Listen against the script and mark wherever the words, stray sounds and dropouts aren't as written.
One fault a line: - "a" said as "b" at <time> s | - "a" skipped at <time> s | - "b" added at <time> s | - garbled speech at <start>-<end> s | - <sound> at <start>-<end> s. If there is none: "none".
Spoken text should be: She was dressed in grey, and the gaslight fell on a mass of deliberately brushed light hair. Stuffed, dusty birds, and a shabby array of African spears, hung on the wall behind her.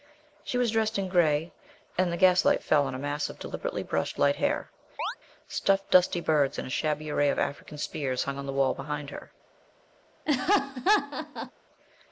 - chirp at 5.0-5.2 s
- laugh at 10.3-11.5 s